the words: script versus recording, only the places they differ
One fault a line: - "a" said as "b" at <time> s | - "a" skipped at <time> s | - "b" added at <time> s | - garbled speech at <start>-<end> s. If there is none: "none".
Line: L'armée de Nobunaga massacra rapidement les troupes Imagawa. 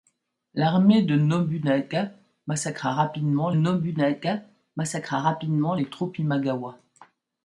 - "Nobunaga massacra rapidement" added at 3.5 s